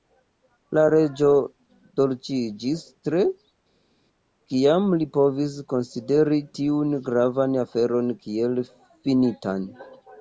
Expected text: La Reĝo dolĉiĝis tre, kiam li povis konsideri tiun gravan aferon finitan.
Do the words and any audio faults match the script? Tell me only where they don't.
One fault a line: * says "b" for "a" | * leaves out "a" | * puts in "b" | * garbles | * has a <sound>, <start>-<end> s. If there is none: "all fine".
* puts in "kiel"